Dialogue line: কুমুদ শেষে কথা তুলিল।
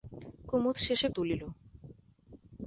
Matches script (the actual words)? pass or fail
fail